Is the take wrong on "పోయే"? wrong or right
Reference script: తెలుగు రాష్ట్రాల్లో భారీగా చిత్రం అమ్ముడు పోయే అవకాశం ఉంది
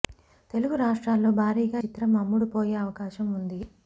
right